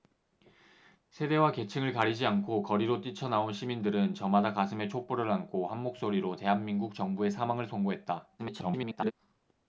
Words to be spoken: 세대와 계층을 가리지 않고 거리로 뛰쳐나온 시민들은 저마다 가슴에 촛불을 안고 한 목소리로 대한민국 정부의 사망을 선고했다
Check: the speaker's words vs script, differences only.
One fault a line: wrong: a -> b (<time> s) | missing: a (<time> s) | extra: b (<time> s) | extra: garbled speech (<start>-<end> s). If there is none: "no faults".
extra: garbled speech (8.4-9.1 s)